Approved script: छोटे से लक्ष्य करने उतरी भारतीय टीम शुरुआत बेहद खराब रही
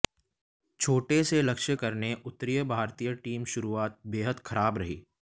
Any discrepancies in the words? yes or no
no